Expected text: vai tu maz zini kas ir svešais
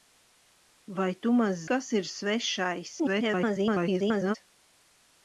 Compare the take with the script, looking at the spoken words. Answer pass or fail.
fail